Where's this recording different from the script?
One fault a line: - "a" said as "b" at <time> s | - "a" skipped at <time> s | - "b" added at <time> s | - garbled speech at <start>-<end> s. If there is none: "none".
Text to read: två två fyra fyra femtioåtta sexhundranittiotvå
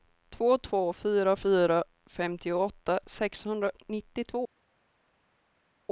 none